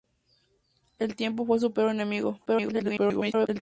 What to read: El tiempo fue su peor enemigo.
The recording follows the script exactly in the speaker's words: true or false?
false